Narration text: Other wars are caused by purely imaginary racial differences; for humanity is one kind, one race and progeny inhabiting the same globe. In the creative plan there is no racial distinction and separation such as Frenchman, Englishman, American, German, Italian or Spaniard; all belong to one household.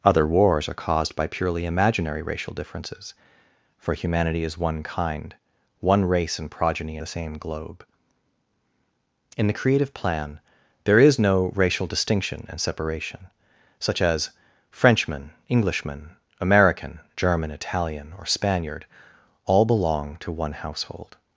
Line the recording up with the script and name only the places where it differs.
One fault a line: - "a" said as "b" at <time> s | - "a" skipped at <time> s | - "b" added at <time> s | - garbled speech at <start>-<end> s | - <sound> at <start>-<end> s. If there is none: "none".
- "inhabiting" skipped at 7.0 s